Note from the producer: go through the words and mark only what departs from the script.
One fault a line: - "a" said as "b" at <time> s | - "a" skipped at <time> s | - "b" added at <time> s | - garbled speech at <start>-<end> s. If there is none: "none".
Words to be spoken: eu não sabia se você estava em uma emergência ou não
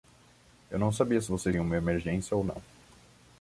- "estava" skipped at 1.5 s